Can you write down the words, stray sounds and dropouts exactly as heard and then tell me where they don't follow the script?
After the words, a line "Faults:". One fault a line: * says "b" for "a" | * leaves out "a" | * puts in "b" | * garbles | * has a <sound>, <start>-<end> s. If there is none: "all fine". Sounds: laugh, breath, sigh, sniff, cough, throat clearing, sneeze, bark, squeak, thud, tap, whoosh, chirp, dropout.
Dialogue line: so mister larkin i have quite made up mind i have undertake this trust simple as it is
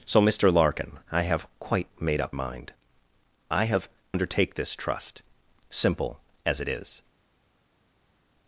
so mister larkin i have quite made up mind i have undertake this trust simple as it is
Faults:
all fine